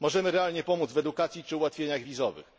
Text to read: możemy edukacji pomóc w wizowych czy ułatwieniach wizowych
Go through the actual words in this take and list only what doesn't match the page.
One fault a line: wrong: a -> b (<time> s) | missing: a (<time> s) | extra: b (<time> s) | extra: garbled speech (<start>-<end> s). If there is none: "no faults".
wrong: edukacji -> realnie (0.3 s)
wrong: wizowych -> edukacji (1.0 s)